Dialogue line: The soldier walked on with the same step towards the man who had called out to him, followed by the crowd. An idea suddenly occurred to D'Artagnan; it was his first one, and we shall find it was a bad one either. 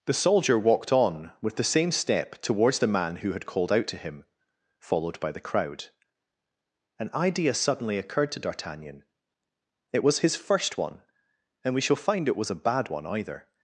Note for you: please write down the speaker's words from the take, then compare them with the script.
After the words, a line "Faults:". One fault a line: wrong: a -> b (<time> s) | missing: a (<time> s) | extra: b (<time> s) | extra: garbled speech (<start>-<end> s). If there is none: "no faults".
The soldier walked on with the same step towards the man who had called out to him, followed by the crowd. An idea suddenly occurred to D'Artagnan; it was his first one, and we shall find it was a bad one either.
Faults:
no faults